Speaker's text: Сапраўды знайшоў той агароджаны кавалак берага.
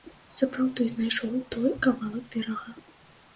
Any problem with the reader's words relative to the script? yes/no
yes